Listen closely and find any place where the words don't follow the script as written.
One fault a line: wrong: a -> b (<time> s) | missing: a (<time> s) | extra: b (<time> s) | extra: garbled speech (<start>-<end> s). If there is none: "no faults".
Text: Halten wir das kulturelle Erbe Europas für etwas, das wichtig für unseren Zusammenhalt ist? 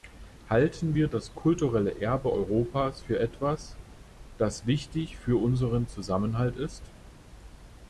no faults